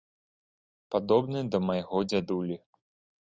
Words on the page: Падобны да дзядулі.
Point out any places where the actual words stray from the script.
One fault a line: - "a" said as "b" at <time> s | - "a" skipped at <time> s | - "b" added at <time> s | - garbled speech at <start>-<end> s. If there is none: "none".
- "майго" added at 1.7 s